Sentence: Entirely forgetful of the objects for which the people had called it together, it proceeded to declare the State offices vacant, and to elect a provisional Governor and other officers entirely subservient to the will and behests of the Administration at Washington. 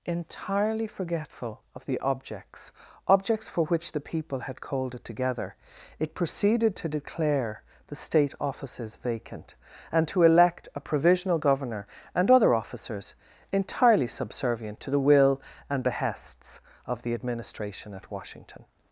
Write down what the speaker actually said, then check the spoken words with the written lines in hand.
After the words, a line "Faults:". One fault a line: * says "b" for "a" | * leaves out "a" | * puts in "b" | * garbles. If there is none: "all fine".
Entirely forgetful of the objects objects for which the people had called it together, it proceeded to declare the State offices vacant, and to elect a provisional Governor and other officers entirely subservient to the will and behests of the Administration at Washington.
Faults:
* puts in "objects"